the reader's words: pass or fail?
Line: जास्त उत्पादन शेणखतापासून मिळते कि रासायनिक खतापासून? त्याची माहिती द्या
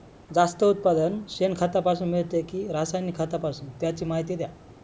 pass